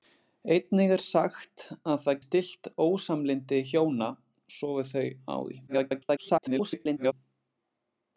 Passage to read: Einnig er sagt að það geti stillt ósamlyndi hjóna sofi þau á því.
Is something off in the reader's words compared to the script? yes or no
yes